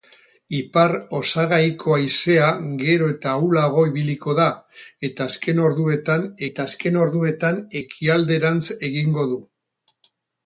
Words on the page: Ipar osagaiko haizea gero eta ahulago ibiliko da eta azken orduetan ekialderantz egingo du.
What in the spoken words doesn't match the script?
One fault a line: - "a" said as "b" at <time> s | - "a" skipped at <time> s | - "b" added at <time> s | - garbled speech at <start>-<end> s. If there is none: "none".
- "eta azken orduetan" added at 6.5 s